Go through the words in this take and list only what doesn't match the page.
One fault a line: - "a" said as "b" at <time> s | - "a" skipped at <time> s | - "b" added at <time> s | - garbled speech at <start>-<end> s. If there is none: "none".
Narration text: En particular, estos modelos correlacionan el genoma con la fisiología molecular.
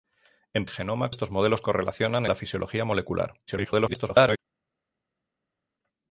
- "particular" said as "genoma" at 0.7 s
- "el genoma con" skipped at 2.2 s
- garbled speech at 3.5-4.4 s